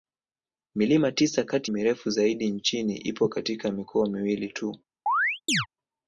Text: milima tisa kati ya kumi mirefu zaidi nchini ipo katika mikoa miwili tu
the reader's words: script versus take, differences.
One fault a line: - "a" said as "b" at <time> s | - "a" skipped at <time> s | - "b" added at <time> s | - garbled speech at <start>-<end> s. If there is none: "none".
- "ya kumi" skipped at 1.7 s